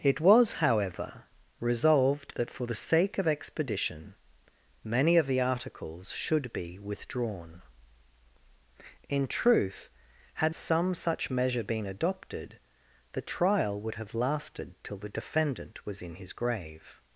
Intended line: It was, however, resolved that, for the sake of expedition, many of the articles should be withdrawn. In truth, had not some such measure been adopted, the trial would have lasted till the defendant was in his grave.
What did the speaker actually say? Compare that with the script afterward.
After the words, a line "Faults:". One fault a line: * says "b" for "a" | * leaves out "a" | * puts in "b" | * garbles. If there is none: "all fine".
It was, however, resolved that, for the sake of expedition, many of the articles should be withdrawn. In truth, had some such measure been adopted, the trial would have lasted till the defendant was in his grave.
Faults:
* leaves out "not"